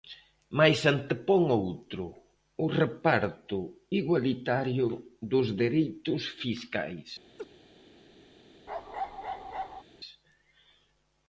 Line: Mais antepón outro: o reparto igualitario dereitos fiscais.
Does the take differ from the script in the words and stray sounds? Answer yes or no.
yes